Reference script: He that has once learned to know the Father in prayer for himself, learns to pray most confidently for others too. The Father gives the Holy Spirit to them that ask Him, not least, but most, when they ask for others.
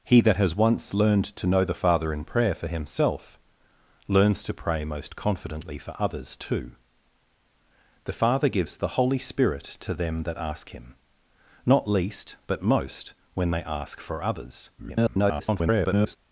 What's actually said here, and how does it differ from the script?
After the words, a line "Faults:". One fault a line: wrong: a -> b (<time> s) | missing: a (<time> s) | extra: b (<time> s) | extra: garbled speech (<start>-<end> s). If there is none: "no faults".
He that has once learned to know the Father in prayer for himself, learns to pray most confidently for others too. The Father gives the Holy Spirit to them that ask Him, not least, but most, when they ask for others. [garbled]
Faults:
extra: garbled speech (14.8-16.2 s)